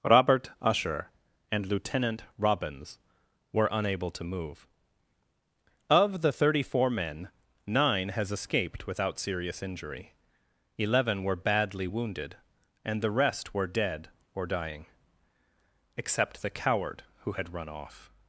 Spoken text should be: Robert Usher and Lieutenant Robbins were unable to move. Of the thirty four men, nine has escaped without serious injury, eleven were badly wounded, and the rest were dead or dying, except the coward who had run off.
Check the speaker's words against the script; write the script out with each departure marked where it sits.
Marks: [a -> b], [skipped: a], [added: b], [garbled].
Robert Usher and Lieutenant Robbins were unable to move. Of the thirty four men, nine has escaped without serious injury, eleven were badly wounded, and the rest were dead or dying, except the coward who had run off.